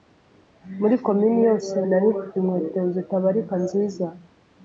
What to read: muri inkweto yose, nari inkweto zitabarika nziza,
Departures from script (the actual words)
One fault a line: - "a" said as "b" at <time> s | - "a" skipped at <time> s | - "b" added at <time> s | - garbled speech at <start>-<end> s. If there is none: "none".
- "inkweto" said as "komini" at 1.1 s
- "mfite" added at 2.1 s